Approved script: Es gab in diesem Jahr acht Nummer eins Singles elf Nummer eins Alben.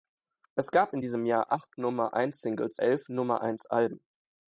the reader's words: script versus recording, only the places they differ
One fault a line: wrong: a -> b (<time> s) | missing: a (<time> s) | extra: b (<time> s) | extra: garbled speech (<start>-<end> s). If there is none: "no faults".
no faults